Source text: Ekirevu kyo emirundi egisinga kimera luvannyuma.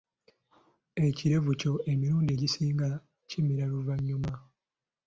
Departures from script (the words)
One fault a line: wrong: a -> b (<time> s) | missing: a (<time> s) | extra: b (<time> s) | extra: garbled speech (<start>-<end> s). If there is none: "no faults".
no faults